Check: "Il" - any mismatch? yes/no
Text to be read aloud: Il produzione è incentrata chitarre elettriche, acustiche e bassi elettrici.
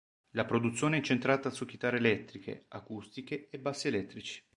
yes